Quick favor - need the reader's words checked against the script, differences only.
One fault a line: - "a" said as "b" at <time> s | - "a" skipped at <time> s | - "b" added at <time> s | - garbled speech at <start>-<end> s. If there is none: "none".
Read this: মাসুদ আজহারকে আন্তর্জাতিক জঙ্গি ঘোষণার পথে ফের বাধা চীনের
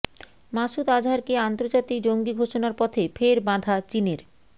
none